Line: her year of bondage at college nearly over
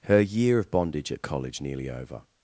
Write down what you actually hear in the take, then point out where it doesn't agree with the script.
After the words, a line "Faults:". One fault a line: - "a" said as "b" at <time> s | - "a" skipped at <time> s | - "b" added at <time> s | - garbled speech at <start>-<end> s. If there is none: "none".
her year of bondage at college nearly over
Faults:
none